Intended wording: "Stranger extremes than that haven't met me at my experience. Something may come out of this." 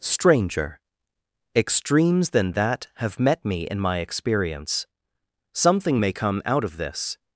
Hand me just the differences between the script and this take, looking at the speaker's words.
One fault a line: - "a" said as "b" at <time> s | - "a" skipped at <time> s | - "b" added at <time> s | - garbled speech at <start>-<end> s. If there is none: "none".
- "haven't" said as "have" at 3.0 s
- "at" said as "in" at 3.7 s